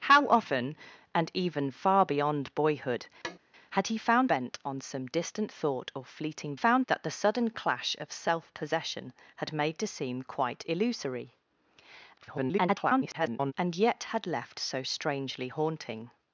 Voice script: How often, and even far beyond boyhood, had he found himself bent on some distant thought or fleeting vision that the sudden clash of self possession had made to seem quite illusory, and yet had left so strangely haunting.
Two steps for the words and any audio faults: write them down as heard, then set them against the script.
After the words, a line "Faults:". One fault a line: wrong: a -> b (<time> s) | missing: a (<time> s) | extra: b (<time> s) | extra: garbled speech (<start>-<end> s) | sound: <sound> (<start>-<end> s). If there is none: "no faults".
How often, and even far beyond boyhood, had he found bent on some distant thought or fleeting found that the sudden clash of self possession had made to seem quite illusory, [garbled] and yet had left so strangely haunting.
Faults:
sound: tap (3.2-3.4 s)
missing: himself (4.3 s)
wrong: vision -> found (6.5 s)
extra: garbled speech (12.2-13.5 s)